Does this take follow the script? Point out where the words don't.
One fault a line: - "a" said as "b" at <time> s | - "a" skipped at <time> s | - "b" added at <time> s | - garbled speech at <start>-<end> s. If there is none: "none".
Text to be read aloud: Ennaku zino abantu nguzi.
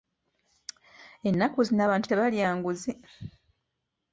- "tebalya" added at 2.1 s